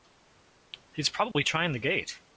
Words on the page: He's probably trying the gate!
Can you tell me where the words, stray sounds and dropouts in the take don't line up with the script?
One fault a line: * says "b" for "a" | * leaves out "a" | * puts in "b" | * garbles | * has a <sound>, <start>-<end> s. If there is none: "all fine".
* has a dropout, 1.3-1.4 s